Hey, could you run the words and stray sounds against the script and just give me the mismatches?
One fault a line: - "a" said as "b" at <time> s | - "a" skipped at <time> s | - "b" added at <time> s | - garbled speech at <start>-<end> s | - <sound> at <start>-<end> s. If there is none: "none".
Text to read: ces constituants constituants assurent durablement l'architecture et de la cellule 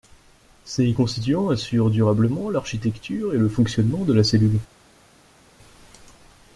- "constituants" skipped at 1.5 s
- "le fonctionnement" added at 3.4 s